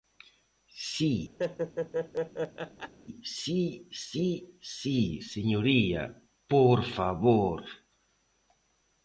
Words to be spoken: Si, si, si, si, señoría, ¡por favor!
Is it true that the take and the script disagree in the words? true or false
false